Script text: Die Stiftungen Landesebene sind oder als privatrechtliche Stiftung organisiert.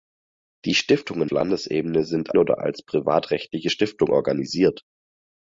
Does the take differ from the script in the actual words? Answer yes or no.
no